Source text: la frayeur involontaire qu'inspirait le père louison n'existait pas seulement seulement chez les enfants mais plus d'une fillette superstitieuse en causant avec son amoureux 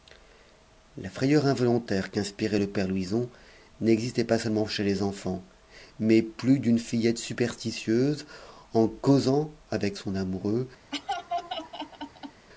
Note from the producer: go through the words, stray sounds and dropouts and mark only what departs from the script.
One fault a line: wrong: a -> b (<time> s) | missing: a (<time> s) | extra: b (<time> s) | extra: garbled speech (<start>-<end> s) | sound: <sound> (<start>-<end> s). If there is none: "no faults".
missing: seulement (4.7 s)
sound: laugh (10.9-12.5 s)